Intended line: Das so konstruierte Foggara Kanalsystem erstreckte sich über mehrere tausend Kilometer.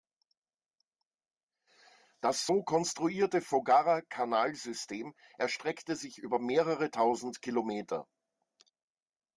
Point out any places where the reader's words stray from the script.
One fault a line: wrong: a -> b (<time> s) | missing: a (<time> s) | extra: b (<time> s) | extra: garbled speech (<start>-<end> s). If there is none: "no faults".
no faults